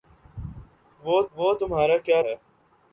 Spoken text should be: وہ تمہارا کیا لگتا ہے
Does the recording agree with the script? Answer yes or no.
no